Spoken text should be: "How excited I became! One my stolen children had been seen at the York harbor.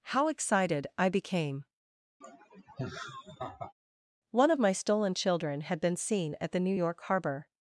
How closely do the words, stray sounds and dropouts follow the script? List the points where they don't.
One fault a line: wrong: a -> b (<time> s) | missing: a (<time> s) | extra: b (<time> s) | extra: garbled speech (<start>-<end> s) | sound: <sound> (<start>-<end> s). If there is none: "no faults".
sound: laugh (2.2-3.7 s)
extra: of (4.5 s)
extra: New (6.6 s)